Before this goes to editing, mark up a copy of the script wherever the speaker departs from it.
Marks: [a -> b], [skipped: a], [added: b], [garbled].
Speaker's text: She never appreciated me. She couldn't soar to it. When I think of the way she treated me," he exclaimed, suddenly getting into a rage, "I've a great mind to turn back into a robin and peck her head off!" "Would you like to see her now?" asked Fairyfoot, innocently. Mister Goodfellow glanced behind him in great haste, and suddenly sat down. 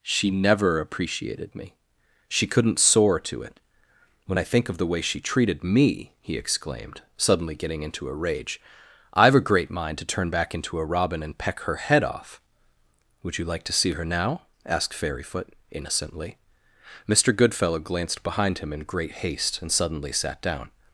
She never appreciated me. She couldn't soar to it. When I think of the way she treated me," he exclaimed, suddenly getting into a rage, "I've a great mind to turn back into a robin and peck her head off!" "Would you like to see her now?" asked Fairyfoot, innocently. Mister Goodfellow glanced behind him in great haste, and suddenly sat down.